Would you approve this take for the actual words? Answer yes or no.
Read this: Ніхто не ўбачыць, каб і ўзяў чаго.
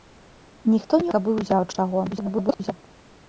no